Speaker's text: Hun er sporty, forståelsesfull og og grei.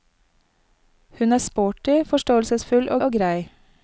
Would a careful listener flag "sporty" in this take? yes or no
no